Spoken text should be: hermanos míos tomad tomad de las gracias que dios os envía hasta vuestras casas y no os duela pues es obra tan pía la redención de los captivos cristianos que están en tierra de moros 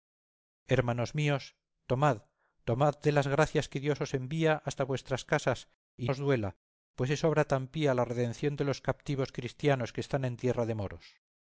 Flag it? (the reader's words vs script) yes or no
yes